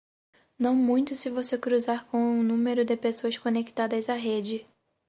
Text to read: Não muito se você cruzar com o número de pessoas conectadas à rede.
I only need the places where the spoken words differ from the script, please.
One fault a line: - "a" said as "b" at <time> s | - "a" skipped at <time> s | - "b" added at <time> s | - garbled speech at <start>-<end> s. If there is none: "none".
none